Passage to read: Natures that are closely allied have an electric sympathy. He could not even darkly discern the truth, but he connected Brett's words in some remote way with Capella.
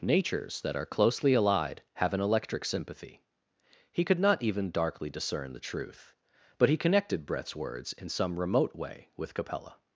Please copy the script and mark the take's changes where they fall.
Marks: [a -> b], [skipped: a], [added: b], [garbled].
Natures that are closely allied have an electric sympathy. He could not even darkly discern the truth, but he connected Brett's words in some remote way with Capella.